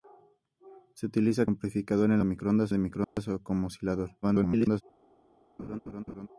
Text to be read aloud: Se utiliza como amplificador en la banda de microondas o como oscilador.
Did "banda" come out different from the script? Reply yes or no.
yes